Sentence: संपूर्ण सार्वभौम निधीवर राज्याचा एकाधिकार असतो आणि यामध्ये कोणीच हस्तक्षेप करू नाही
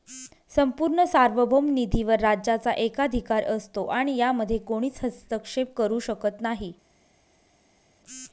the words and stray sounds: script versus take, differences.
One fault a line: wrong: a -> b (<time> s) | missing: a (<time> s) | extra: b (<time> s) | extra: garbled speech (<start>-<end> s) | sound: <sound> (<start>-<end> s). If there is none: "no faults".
extra: शकत (6.0 s)